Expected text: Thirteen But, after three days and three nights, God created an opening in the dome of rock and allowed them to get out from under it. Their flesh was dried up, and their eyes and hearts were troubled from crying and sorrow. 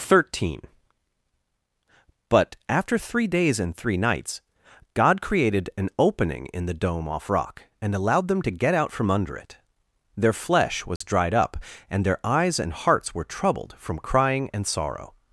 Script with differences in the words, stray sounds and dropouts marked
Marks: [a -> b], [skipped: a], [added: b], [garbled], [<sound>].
Thirteen But, after three days and three nights, God created an opening in the dome [of -> off] rock and allowed them to get out from under it. Their flesh was [dropout] dried up, and their eyes and hearts were troubled from crying and sorrow.